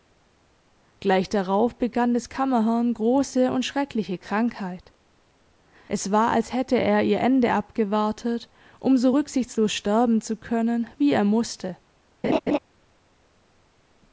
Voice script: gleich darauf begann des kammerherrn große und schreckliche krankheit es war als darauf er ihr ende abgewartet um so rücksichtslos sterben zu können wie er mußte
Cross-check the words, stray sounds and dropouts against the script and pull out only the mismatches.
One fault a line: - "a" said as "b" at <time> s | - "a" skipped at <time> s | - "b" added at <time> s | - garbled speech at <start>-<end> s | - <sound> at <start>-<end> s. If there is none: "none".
- "darauf" said as "hätte" at 6.5 s
- laugh at 12.2-12.6 s